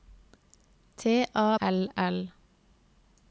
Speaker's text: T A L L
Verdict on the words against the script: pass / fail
pass